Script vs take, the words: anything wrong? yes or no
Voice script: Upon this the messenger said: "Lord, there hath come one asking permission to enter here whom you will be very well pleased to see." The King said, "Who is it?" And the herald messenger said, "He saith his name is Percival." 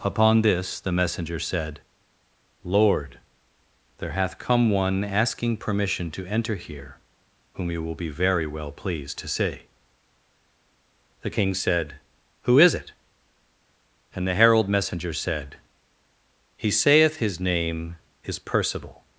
no